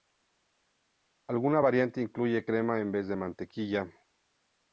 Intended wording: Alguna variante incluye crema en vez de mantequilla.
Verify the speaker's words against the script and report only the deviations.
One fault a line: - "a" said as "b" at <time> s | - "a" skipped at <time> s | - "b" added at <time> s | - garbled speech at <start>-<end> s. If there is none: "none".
none